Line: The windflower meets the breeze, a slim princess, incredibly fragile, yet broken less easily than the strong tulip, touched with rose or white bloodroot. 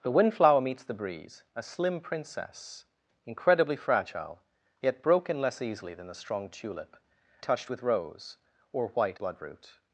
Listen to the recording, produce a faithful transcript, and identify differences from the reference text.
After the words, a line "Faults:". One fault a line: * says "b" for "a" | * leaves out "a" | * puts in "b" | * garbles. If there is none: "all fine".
The windflower meets the breeze, a slim princess, incredibly fragile, yet broken less easily than the strong tulip, touched with rose or white bloodroot.
Faults:
all fine